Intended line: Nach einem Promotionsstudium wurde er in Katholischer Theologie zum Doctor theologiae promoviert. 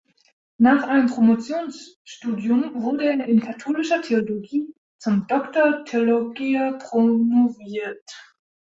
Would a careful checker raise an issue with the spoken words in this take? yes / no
no